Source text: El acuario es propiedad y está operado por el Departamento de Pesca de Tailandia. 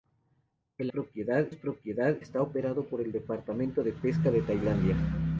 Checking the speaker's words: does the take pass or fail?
fail